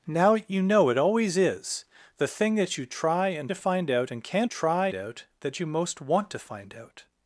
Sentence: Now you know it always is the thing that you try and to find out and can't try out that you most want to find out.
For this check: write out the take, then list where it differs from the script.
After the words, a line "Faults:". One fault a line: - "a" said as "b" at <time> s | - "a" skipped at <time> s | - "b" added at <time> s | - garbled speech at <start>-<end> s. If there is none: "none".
Now you know it always is the thing that you try and to find out and can't try out that you most want to find out.
Faults:
none